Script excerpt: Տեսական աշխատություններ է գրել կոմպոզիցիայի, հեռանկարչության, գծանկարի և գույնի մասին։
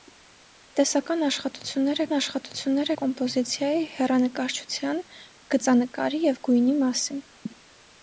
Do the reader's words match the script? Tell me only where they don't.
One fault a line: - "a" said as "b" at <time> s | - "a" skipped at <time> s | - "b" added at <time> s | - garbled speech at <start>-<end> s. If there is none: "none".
- "գրել" said as "աշխատություններ" at 2.2 s